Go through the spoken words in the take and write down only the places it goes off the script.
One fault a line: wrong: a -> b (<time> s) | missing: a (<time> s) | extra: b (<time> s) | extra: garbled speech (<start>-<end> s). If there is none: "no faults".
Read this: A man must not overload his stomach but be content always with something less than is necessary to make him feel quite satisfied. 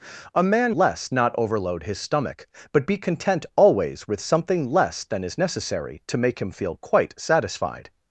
wrong: must -> less (0.7 s)